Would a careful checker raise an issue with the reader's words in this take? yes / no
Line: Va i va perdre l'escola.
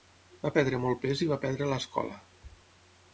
yes